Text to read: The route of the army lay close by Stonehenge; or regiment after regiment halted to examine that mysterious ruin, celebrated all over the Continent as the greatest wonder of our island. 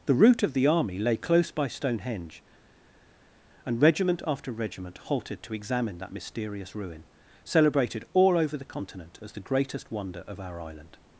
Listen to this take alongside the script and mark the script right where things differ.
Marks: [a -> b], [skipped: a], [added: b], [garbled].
The route of the army lay close by Stonehenge; [or -> and] regiment after regiment halted to examine that mysterious ruin, celebrated all over the Continent as the greatest wonder of our island.